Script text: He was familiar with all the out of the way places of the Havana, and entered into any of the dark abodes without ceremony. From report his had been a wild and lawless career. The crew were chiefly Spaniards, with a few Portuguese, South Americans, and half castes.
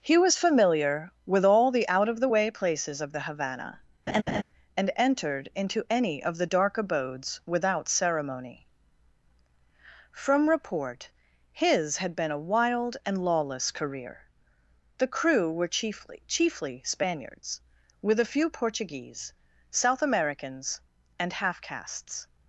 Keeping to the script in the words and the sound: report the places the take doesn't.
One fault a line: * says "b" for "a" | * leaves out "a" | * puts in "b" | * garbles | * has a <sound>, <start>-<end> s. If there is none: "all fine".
* has a laugh, 4.1-4.4 s
* puts in "chiefly"